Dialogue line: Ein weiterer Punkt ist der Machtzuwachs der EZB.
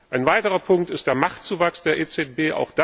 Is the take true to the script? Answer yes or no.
yes